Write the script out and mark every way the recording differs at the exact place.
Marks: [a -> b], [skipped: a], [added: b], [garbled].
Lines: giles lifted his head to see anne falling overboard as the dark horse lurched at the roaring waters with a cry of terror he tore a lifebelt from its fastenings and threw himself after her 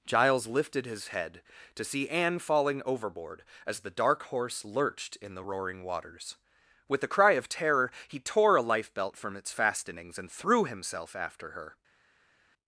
giles lifted his head to see anne falling overboard as the dark horse lurched [at -> in] the roaring waters with a cry of terror he tore a lifebelt from its fastenings and threw himself after her